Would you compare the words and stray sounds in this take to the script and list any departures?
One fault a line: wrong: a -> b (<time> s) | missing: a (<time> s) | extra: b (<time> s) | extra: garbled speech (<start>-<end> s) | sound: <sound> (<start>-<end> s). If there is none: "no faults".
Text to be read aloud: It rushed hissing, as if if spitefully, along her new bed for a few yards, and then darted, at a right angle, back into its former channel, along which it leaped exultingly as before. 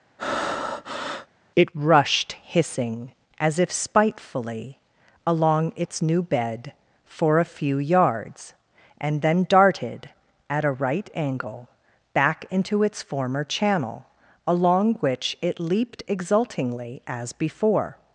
sound: breath (0.2-1.3 s)
missing: if (3.7 s)
wrong: her -> its (5.8 s)